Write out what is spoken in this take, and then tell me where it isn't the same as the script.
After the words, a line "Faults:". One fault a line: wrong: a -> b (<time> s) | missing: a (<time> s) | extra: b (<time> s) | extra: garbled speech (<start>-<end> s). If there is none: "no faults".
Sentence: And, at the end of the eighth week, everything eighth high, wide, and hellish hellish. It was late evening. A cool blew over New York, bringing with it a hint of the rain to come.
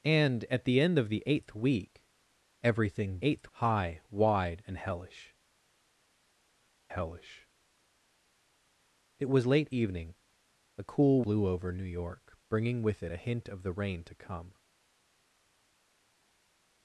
And, at the end of the eighth week, everything eighth high, wide, and hellish hellish. It was late evening. A cool blew over New York, bringing with it a hint of the rain to come.
Faults:
no faults